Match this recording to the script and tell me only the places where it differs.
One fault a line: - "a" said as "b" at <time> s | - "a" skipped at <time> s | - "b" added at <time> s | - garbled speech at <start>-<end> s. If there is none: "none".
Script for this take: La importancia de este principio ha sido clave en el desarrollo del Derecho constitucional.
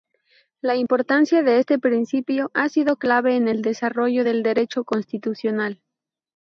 none